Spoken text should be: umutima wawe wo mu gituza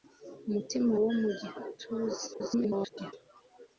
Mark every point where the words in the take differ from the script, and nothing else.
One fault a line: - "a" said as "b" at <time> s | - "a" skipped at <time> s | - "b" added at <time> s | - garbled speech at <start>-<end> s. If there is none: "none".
- "wawe" skipped at 0.9 s
- garbled speech at 2.3-3.1 s